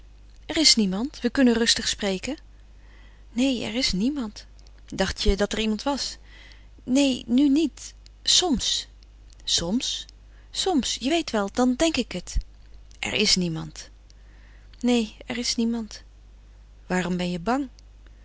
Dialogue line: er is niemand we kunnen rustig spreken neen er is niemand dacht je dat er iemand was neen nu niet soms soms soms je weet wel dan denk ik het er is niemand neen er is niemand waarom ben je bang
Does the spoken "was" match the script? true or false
true